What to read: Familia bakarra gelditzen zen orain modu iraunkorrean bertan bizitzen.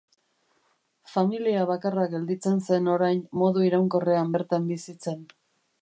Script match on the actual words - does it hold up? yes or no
yes